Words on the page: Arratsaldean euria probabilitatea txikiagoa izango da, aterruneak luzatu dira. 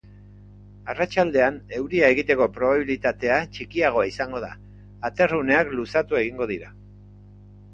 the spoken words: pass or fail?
fail